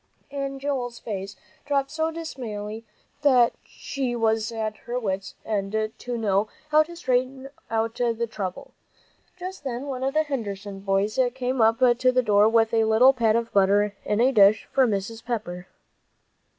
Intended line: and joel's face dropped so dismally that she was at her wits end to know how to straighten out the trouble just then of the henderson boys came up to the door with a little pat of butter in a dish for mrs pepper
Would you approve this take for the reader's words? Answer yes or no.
no